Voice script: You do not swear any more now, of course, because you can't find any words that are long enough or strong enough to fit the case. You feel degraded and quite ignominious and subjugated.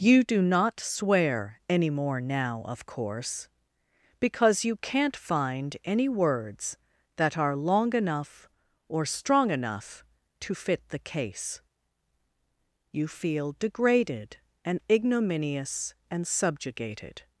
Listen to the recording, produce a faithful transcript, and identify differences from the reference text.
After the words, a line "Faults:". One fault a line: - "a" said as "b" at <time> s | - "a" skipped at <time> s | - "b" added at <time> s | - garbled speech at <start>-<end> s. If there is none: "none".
You do not swear any more now, of course, because you can't find any words that are long enough or strong enough to fit the case. You feel degraded and ignominious and subjugated.
Faults:
- "quite" skipped at 14.8 s